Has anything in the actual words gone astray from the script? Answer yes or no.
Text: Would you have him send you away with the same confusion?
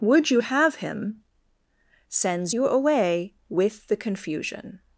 yes